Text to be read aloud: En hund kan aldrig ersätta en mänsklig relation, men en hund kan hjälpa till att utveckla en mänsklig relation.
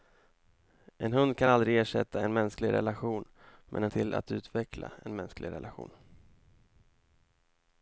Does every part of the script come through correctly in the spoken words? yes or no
no